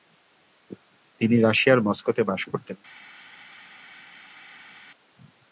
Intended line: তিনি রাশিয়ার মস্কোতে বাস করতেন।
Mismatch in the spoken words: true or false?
false